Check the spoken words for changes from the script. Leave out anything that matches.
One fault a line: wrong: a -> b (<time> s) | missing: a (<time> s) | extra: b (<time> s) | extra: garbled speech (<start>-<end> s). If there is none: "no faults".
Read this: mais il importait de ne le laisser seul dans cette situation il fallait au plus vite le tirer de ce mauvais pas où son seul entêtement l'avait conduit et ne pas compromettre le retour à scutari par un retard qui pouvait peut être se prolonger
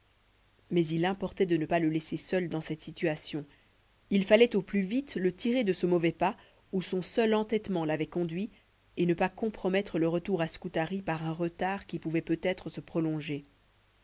extra: pas (1.6 s)